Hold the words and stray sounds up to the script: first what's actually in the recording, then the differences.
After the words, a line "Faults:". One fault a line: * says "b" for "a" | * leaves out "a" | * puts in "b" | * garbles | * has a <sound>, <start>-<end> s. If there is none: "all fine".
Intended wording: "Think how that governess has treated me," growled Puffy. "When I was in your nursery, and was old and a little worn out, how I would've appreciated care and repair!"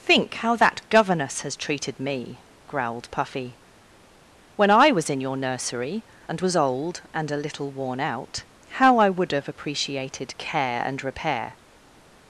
"Think how that governess has treated me," growled Puffy. "When I was in your nursery, and was old and a little worn out, how I would've appreciated care and repair!"
Faults:
all fine